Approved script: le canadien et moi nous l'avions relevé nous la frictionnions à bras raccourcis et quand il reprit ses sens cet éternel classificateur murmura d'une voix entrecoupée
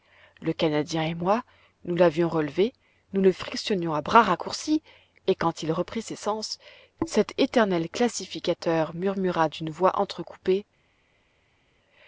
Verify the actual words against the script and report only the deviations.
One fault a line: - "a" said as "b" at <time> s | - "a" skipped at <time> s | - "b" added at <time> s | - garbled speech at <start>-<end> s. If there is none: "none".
- "la" said as "le" at 3.2 s